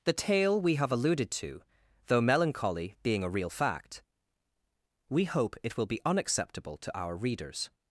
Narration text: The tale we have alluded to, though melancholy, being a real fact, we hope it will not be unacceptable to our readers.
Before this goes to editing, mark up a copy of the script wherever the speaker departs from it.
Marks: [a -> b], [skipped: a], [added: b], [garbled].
The tale we have alluded to, though melancholy, being a real fact, we hope it will [skipped: not] be unacceptable to our readers.